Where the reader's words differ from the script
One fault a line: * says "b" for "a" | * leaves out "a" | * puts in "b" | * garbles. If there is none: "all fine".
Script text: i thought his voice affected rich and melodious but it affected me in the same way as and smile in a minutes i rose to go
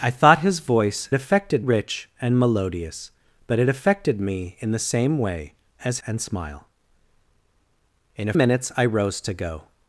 all fine